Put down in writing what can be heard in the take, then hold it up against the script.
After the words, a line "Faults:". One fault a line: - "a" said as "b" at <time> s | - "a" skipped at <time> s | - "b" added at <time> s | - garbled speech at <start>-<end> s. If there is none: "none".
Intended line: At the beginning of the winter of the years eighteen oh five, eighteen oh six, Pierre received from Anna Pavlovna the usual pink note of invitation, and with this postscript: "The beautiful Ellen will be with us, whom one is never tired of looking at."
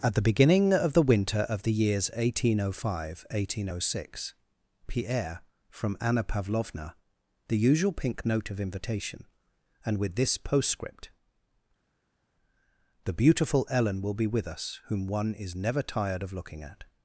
At the beginning of the winter of the years eighteen oh five, eighteen oh six, Pierre from Anna Pavlovna the usual pink note of invitation, and with this postscript: "The beautiful Ellen will be with us, whom one is never tired of looking at."
Faults:
- "received" skipped at 5.4 s